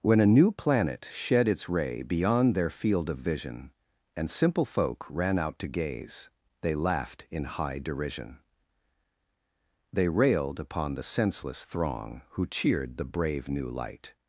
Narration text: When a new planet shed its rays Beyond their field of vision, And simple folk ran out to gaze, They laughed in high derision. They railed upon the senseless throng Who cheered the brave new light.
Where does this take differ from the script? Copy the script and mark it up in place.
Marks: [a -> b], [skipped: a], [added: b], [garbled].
When a new planet shed its [rays -> ray] Beyond their field of vision, And simple folk ran out to gaze, They laughed in high derision. They railed upon the senseless throng Who cheered the brave new light.